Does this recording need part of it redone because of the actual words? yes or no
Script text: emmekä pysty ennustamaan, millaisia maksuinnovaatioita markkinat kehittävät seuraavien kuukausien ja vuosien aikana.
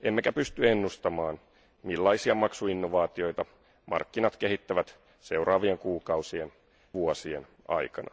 yes